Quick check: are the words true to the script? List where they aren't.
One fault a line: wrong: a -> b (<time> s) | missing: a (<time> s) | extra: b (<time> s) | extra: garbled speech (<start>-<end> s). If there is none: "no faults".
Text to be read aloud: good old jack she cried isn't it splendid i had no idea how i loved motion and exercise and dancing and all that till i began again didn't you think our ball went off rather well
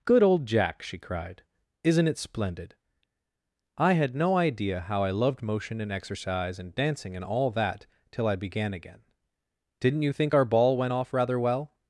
no faults